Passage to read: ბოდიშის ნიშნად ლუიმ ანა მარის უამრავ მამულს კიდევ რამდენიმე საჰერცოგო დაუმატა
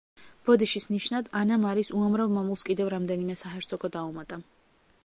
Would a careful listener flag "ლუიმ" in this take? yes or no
yes